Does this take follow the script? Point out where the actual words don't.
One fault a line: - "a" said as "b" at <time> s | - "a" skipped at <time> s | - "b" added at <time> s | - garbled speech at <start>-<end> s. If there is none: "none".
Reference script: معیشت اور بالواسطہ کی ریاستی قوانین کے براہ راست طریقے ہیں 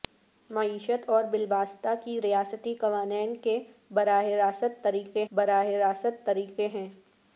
- "براہ راست طریقے" added at 5.3 s